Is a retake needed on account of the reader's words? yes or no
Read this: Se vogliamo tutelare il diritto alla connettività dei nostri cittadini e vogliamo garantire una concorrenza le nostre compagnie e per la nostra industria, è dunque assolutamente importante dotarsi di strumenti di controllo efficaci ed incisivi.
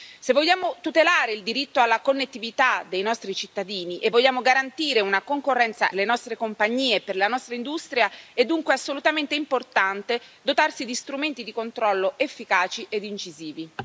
no